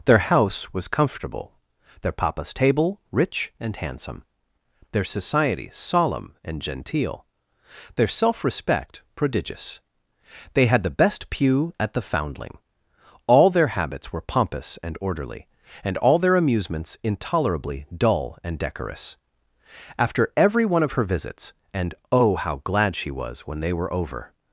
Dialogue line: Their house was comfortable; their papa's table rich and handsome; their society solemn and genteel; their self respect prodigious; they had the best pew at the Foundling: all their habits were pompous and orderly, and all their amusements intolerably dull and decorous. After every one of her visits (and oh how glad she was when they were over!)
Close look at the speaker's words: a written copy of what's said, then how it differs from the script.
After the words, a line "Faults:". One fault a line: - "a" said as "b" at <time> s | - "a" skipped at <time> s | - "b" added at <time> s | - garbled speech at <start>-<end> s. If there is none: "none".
Their house was comfortable; their papa's table rich and handsome; their society solemn and genteel; their self respect prodigious; they had the best pew at the Foundling: all their habits were pompous and orderly, and all their amusements intolerably dull and decorous. After every one of her visits (and oh how glad she was when they were over!)
Faults:
none